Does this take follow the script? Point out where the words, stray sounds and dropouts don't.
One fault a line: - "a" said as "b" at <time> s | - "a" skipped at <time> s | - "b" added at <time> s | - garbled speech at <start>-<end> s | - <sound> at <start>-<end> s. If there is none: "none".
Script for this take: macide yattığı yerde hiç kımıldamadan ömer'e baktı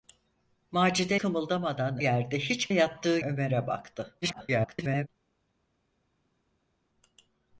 - "yattığı" said as "kımıldamadan" at 1.2 s
- "kımıldamadan" said as "yattığı" at 2.7 s
- garbled speech at 4.2-5.1 s